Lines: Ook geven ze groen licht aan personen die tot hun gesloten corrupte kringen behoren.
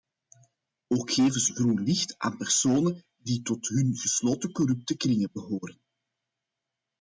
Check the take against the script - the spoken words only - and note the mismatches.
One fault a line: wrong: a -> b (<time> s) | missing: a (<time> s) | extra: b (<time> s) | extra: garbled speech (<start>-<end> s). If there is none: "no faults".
no faults